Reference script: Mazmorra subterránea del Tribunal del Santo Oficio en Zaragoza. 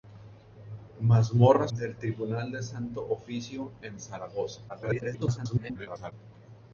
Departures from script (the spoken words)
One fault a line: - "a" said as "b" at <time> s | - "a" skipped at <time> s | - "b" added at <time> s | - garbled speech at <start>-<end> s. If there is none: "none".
- "subterránea" skipped at 1.7 s
- garbled speech at 4.7-6.1 s